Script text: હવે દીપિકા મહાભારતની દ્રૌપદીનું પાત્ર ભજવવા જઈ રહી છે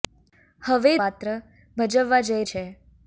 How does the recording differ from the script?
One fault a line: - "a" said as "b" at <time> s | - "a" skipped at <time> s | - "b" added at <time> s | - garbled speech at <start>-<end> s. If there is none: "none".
- "દીપિકા મહાભારતની દ્રૌપદીનું" skipped at 0.9 s
- "રહી" skipped at 2.4 s